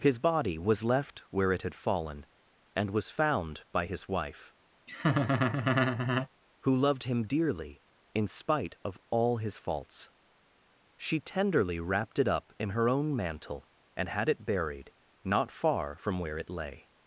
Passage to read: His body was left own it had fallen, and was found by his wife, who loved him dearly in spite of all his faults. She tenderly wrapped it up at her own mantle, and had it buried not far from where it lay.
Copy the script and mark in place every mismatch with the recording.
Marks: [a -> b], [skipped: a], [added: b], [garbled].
His body was left [own -> where] it had fallen, and was found by his wife, who loved him dearly in spite of all his faults. She tenderly wrapped it up [at -> in] her own mantle, and had it buried not far from where it lay.